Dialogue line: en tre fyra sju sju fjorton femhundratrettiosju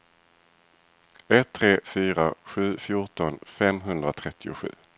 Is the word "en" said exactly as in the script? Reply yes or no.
no